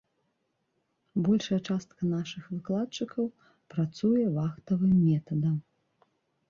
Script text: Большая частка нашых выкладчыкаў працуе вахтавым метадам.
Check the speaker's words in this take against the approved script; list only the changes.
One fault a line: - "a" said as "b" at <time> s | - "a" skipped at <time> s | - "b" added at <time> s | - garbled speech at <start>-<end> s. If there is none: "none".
none